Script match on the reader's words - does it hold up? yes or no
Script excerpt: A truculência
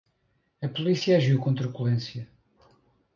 no